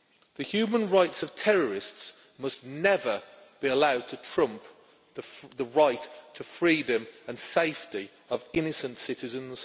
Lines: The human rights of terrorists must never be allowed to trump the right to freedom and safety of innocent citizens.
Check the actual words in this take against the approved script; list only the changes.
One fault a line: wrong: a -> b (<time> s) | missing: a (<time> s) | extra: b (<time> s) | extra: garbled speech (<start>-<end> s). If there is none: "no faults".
no faults